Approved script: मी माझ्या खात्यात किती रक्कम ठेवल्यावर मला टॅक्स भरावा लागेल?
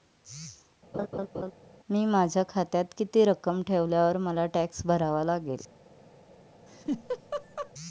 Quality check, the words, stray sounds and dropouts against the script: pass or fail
fail